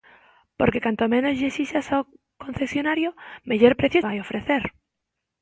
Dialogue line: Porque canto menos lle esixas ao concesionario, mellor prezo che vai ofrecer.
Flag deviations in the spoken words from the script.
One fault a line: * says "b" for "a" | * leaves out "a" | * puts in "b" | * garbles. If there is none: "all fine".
* leaves out "che"